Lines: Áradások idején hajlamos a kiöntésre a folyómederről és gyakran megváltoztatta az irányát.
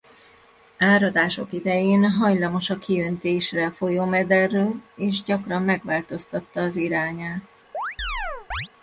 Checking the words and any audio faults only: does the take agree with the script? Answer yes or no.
no